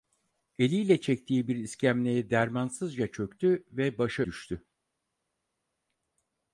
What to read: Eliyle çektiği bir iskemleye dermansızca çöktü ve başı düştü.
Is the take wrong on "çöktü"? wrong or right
right